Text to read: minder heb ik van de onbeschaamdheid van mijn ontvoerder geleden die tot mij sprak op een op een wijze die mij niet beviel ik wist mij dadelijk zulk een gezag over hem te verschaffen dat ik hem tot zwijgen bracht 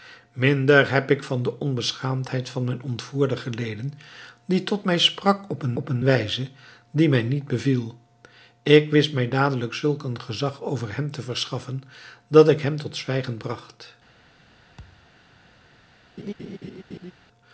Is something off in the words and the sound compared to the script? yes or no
yes